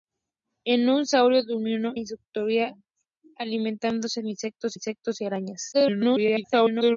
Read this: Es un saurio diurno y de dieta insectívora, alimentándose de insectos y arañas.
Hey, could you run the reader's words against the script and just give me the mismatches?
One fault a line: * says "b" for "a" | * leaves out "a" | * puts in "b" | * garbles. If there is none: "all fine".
* leaves out "y de dieta"
* puts in "insectos"
* garbles